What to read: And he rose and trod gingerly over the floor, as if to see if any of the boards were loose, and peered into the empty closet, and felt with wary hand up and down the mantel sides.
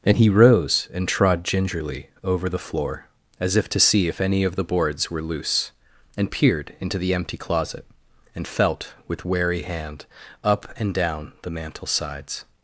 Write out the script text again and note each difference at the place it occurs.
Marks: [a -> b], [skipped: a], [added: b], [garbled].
And he rose and trod gingerly over the floor, as if to see if any of the boards were loose, and peered into the empty closet, and felt with wary hand up and down the mantel sides.